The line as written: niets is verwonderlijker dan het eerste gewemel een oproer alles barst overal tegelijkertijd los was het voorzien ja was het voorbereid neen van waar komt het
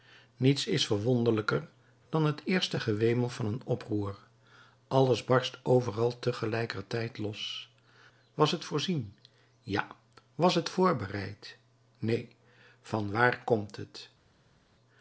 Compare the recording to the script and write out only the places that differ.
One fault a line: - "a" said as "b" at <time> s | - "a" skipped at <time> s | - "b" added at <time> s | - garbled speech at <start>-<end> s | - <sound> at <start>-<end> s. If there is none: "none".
- "van" added at 3.3 s